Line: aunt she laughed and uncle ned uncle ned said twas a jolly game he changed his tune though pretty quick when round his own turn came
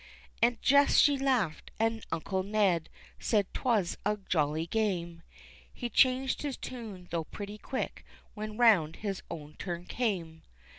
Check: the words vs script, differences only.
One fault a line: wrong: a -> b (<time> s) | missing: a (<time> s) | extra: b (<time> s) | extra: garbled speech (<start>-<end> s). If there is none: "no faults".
extra: jess (0.6 s)
missing: uncle ned (2.9 s)